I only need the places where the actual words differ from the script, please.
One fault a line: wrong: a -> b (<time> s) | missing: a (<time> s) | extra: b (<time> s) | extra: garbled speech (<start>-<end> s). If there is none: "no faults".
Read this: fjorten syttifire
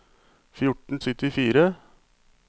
no faults